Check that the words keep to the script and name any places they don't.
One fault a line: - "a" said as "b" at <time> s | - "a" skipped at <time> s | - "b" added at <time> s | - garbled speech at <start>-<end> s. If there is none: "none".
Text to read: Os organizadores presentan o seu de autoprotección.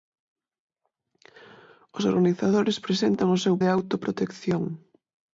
none